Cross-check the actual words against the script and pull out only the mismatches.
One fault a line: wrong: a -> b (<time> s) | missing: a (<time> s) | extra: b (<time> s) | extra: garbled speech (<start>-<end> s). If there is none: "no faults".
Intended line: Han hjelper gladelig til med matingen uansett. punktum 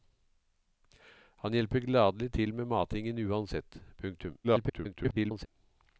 extra: garbled speech (4.4-5.5 s)